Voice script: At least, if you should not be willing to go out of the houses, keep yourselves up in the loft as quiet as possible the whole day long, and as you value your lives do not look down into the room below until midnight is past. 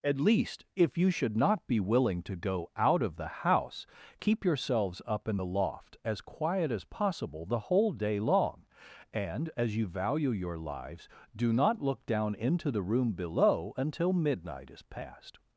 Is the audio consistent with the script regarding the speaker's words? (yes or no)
no